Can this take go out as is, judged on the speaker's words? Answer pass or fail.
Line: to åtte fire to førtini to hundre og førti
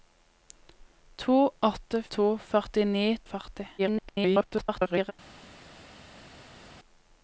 fail